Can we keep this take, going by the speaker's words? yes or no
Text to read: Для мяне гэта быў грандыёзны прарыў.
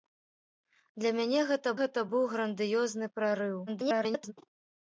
no